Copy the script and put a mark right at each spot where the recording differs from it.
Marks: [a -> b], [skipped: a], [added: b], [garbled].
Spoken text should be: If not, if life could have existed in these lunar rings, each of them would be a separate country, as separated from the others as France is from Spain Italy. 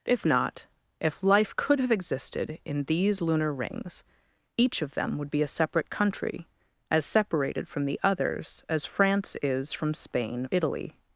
If not, if life could have existed in these lunar rings, each of them would be a separate country, as separated from the others as France is from Spain Italy.